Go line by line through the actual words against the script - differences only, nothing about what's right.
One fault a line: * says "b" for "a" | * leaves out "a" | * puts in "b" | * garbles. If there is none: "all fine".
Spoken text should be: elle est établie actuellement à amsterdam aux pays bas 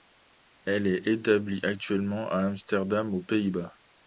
all fine